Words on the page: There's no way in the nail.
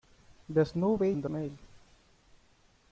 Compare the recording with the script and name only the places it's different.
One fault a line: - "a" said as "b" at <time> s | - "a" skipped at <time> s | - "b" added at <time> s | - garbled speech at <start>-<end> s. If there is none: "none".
none